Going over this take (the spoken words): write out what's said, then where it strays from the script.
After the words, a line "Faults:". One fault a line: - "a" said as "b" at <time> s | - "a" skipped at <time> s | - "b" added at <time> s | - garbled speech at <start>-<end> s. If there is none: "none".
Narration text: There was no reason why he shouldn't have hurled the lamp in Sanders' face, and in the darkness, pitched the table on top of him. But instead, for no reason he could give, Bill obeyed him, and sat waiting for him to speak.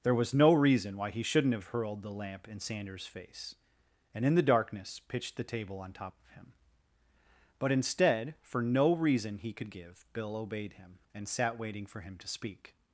There was no reason why he shouldn't have hurled the lamp in Sanders' face, and in the darkness, pitched the table on top of him. But instead, for no reason he could give, Bill obeyed him, and sat waiting for him to speak.
Faults:
none